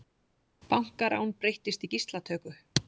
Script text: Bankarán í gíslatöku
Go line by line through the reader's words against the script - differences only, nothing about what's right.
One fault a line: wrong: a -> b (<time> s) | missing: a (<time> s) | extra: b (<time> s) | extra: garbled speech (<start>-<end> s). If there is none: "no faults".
extra: breyttist (1.4 s)